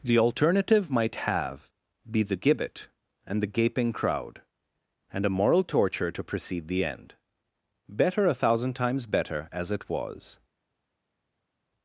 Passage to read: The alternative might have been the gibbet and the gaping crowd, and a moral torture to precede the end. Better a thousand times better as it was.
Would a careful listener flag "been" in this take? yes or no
yes